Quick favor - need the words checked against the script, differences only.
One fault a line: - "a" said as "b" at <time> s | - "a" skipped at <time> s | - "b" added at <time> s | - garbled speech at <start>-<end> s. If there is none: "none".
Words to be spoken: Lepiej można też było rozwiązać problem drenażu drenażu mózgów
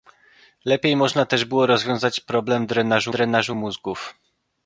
none